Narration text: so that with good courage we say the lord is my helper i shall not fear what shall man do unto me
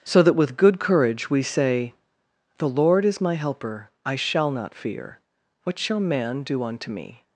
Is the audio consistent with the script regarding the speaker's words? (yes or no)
yes